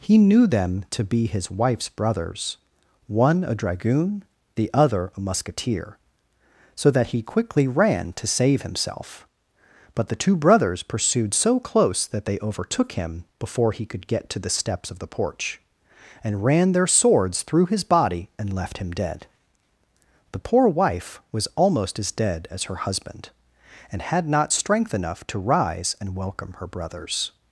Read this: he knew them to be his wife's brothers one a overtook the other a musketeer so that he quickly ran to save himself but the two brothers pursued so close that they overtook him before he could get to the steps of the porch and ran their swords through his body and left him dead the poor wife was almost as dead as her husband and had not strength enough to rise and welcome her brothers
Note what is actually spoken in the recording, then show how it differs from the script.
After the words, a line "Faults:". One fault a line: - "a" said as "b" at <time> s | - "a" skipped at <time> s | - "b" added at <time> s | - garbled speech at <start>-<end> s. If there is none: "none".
he knew them to be his wife's brothers one a dragoon the other a musketeer so that he quickly ran to save himself but the two brothers pursued so close that they overtook him before he could get to the steps of the porch and ran their swords through his body and left him dead the poor wife was almost as dead as her husband and had not strength enough to rise and welcome her brothers
Faults:
- "overtook" said as "dragoon" at 3.5 s